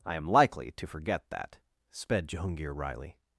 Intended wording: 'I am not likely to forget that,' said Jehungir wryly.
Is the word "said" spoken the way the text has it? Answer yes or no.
no